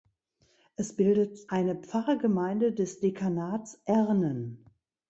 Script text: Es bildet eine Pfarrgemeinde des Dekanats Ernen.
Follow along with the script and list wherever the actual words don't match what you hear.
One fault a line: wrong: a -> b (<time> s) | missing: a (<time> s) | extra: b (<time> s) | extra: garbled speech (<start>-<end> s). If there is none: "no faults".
no faults